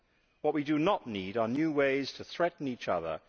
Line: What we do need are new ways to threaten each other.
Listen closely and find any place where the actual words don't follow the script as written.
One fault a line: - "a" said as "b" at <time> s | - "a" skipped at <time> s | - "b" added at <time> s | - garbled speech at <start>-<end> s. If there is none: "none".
- "not" added at 0.8 s